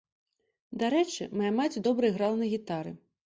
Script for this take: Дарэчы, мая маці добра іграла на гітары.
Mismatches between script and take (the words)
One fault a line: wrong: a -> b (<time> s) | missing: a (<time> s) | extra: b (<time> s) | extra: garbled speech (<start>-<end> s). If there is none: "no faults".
no faults